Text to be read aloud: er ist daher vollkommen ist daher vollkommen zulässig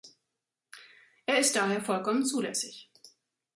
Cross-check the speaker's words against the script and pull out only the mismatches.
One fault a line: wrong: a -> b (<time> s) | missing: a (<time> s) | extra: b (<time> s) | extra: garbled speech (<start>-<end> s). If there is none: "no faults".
missing: ist daher vollkommen (2.2 s)